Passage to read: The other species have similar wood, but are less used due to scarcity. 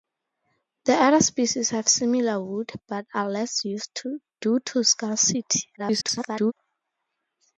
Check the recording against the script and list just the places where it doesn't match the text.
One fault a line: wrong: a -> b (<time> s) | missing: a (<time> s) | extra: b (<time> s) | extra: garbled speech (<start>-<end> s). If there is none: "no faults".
extra: garbled speech (5.8-6.5 s)